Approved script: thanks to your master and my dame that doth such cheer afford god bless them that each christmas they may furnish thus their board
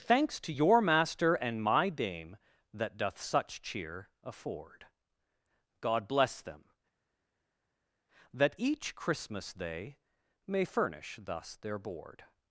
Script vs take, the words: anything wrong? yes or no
no